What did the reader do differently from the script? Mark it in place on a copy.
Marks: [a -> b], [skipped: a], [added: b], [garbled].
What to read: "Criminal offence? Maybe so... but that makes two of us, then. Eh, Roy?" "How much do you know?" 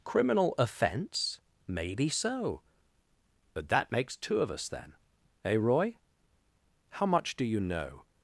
"Criminal offence? Maybe so... but that makes two of us, then. Eh, Roy?" "How much do you know?"